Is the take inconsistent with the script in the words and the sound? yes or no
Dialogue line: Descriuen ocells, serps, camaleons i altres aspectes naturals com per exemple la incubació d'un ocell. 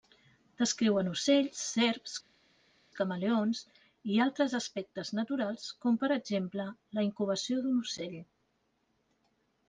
no